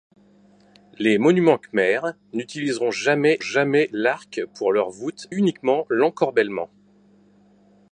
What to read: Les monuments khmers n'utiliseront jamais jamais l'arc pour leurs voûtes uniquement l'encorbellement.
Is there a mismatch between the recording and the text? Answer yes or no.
no